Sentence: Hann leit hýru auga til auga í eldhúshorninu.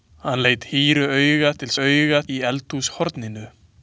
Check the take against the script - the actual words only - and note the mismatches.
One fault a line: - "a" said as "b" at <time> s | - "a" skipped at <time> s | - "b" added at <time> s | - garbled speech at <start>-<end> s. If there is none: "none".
none